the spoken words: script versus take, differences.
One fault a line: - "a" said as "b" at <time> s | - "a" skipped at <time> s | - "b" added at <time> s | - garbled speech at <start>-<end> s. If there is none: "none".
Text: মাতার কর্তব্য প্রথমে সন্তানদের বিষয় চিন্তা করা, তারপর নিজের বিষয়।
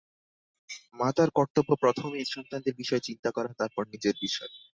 none